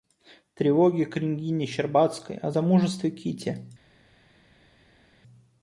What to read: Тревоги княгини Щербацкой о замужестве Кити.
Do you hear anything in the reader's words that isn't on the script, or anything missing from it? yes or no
no